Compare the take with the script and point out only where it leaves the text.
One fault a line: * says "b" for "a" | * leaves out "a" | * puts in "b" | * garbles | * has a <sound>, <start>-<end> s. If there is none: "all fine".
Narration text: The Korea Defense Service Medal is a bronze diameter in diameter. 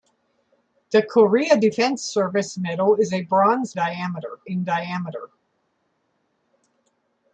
all fine